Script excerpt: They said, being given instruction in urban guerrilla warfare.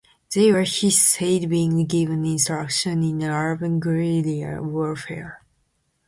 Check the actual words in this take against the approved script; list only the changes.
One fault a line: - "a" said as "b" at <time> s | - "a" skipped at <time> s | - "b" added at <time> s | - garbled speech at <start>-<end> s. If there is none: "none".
- "were he" added at 0.5 s